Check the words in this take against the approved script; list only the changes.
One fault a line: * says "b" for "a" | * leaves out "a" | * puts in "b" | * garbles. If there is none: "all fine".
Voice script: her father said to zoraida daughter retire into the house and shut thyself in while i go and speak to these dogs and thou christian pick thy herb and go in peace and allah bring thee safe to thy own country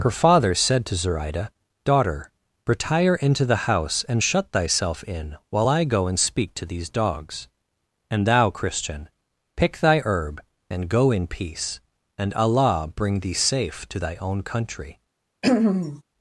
all fine